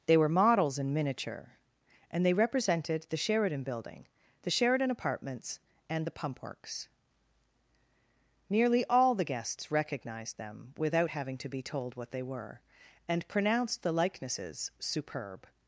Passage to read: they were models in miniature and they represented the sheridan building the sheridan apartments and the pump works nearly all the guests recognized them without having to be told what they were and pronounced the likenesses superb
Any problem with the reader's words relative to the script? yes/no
no